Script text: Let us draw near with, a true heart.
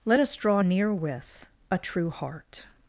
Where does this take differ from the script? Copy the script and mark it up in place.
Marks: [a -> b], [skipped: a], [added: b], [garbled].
Let us draw near with, a true heart.